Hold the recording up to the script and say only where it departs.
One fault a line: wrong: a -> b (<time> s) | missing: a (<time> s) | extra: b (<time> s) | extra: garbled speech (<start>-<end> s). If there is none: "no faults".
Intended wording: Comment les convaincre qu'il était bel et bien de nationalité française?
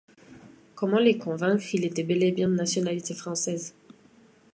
no faults